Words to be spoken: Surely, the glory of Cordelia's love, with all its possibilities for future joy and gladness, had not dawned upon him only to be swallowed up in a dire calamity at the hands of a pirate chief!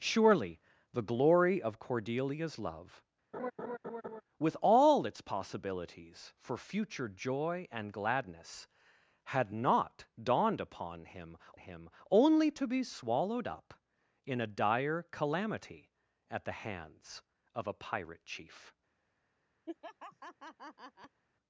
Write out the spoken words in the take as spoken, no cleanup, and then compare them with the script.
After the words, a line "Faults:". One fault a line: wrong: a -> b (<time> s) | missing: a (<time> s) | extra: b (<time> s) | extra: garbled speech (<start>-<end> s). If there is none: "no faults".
Surely, the glory of Cordelia's love, with all its possibilities for future joy and gladness, had not dawned upon him him only to be swallowed up in a dire calamity at the hands of a pirate chief!
Faults:
extra: him (11.6 s)